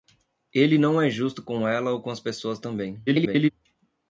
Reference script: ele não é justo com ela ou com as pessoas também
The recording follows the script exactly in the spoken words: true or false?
false